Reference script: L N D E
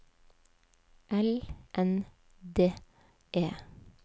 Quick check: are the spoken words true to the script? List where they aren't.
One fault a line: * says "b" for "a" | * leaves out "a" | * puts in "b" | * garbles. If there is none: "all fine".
all fine